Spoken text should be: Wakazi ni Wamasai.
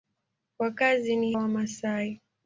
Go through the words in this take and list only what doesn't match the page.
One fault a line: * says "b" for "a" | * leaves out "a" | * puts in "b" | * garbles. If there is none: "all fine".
all fine